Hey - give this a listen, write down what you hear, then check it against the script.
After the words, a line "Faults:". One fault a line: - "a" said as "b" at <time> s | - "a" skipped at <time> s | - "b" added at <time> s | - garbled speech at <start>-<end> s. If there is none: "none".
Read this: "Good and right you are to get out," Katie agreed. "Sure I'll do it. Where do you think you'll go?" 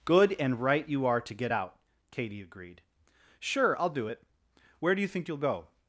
"Good and right you are to get out," Katie agreed. "Sure I'll do it. Where do you think you'll go?"
Faults:
none